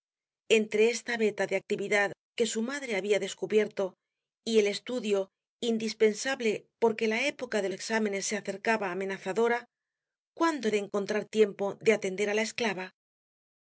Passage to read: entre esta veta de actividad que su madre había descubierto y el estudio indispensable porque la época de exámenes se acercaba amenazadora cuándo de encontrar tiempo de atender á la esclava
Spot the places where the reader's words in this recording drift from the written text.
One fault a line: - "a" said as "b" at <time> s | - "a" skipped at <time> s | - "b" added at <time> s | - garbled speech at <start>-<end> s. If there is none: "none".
none